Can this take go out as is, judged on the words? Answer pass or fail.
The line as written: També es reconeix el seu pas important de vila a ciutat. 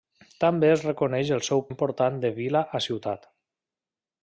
fail